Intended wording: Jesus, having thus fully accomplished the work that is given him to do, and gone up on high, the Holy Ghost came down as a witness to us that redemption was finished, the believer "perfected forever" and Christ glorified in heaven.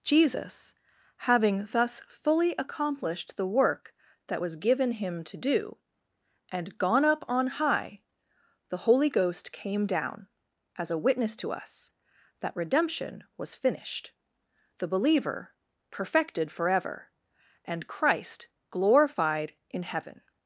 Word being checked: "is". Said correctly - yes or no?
no